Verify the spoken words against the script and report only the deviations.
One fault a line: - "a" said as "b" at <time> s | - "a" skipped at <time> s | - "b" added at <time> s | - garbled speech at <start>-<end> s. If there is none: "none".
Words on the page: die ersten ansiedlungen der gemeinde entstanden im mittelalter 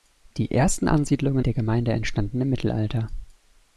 none